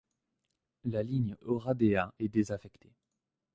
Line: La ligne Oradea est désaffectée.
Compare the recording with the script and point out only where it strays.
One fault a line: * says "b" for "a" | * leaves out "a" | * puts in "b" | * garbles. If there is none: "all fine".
all fine